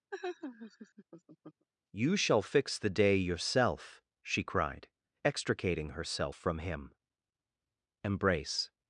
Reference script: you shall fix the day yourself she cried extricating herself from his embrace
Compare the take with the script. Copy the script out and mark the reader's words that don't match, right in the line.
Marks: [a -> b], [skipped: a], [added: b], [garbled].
you shall fix the day yourself she cried extricating herself from [his -> him] embrace